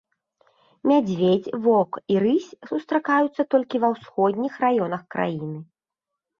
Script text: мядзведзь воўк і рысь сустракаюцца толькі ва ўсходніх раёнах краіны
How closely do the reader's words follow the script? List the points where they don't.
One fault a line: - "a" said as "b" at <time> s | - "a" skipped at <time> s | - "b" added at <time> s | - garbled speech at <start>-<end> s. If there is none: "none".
none